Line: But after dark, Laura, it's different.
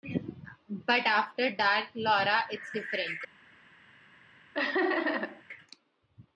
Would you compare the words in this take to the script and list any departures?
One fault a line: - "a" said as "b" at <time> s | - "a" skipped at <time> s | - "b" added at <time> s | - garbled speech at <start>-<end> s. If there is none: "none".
none